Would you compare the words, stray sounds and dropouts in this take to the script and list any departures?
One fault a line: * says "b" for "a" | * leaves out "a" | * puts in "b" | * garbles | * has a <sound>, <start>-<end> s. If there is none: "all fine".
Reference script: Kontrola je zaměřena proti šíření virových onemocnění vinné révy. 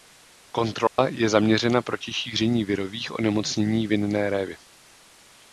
* has a dropout, 0.9-1.0 s